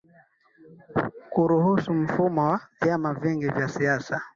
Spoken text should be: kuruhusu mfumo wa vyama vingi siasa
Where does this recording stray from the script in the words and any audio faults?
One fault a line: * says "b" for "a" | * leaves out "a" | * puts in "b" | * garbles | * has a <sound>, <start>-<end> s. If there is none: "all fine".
* puts in "vya"